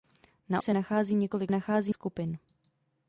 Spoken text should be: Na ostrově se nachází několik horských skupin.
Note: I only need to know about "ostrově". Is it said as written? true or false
false